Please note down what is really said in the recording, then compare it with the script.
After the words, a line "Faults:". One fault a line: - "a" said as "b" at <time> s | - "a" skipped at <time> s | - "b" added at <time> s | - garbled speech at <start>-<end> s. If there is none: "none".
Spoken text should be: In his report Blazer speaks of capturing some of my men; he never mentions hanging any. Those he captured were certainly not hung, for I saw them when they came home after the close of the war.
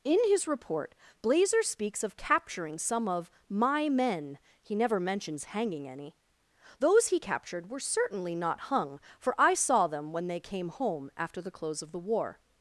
In his report Blazer speaks of capturing some of my men; he never mentions hanging any. Those he captured were certainly not hung, for I saw them when they came home after the close of the war.
Faults:
none